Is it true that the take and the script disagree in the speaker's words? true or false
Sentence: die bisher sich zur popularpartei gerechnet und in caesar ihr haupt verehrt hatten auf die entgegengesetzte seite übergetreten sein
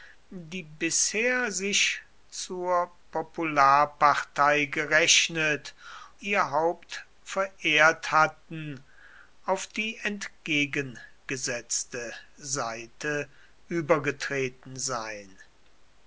true